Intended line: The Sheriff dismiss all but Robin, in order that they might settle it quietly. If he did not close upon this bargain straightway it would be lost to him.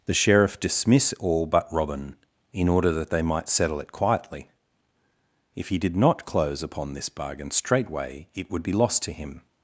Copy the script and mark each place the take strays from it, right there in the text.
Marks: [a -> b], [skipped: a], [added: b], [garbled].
The Sheriff dismiss all but Robin, in order that they might settle it quietly. If he did not close upon this bargain straightway it would be lost to him.